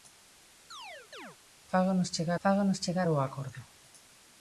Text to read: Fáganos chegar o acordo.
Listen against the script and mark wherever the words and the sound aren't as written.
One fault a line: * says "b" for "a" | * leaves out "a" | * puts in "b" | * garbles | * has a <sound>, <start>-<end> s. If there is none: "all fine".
* has a chirp, 0.7-1.4 s
* puts in "fáganos chegar"